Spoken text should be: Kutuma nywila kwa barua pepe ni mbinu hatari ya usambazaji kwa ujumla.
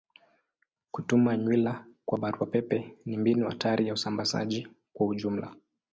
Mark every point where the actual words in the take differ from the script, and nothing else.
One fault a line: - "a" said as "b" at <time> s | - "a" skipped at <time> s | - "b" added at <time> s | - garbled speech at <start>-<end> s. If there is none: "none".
none